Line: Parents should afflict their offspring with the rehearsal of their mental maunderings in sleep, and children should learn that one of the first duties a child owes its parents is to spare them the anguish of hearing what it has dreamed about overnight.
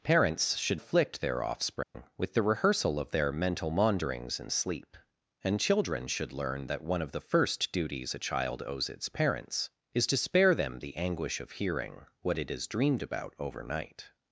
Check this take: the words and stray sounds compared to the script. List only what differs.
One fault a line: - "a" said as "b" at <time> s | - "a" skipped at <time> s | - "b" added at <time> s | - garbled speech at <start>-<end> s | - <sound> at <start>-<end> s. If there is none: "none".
- dropout at 1.8-1.9 s